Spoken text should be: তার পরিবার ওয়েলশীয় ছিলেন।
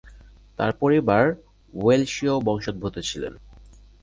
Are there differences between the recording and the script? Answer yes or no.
yes